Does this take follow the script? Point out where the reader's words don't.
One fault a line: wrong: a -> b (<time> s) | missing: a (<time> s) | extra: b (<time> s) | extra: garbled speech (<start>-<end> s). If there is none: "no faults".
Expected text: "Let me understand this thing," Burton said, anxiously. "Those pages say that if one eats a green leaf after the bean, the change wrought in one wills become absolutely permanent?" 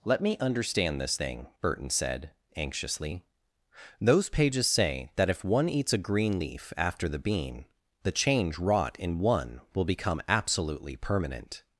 wrong: wills -> will (9.7 s)